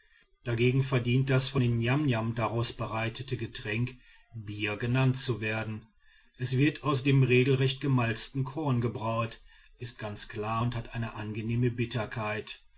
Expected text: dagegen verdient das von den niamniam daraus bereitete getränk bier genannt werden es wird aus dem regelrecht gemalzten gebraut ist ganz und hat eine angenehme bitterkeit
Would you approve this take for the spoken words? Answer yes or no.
no